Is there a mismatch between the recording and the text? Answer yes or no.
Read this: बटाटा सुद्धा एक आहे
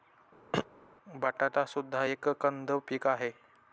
yes